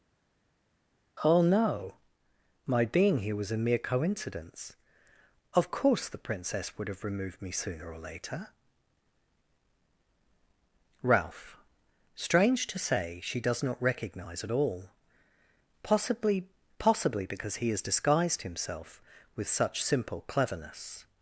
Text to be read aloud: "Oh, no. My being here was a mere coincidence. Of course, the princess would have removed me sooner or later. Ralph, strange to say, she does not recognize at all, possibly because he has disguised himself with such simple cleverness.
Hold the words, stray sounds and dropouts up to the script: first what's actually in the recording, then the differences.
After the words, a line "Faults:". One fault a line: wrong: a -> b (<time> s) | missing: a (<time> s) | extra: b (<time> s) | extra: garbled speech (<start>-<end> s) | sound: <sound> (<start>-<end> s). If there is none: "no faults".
"Oh, no. My being here was a mere coincidence. Of course, the princess would have removed me sooner or later. Ralph, strange to say, she does not recognize at all, possibly possibly because he has disguised himself with such simple cleverness.
Faults:
extra: possibly (16.8 s)